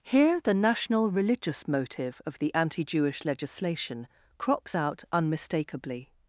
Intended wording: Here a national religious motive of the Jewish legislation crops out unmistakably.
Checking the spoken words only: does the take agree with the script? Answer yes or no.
no